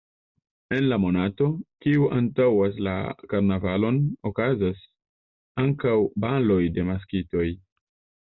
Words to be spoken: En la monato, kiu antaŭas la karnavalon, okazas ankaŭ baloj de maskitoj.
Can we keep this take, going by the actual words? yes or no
yes